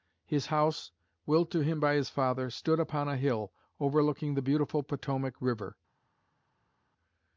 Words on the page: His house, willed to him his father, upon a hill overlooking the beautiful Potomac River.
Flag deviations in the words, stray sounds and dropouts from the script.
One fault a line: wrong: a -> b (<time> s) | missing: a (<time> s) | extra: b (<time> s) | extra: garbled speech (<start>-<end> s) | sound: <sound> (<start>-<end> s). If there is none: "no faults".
extra: by (1.8 s)
extra: stood (2.5 s)